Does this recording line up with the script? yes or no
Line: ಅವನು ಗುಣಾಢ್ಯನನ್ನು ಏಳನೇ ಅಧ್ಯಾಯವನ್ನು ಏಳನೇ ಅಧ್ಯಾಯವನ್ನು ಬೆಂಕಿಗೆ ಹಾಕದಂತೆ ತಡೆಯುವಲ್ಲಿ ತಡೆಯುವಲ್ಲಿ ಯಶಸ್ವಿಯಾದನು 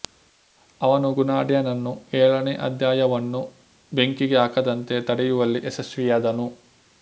no